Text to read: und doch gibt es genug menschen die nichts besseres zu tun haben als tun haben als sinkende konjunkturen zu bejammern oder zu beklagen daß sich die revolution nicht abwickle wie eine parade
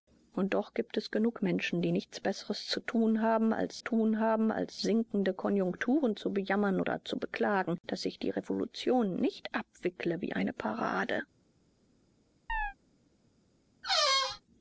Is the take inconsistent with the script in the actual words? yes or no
no